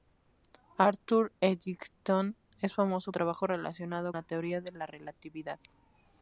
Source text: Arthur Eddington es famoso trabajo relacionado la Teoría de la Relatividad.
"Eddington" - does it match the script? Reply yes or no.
yes